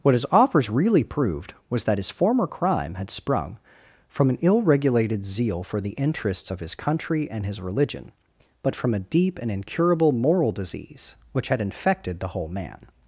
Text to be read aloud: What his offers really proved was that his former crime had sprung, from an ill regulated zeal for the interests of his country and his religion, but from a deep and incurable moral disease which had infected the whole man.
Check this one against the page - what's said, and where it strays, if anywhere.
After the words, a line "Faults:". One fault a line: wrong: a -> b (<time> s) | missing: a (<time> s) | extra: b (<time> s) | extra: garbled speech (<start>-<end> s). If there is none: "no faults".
What his offers really proved was that his former crime had sprung, from an ill regulated zeal for the interests of his country and his religion, but from a deep and incurable moral disease which had infected the whole man.
Faults:
no faults